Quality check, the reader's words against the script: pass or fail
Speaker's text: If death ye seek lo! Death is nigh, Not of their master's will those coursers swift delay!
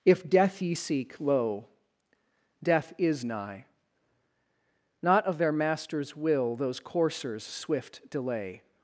pass